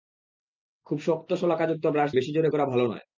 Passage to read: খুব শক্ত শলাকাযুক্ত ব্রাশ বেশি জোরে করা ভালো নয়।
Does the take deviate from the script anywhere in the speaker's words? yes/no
no